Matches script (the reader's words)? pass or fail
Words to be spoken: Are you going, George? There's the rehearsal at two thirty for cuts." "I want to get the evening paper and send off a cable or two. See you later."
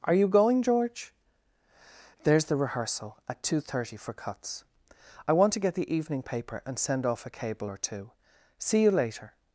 pass